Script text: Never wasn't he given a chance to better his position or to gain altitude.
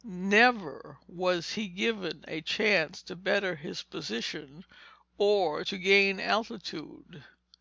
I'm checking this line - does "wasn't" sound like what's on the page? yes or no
no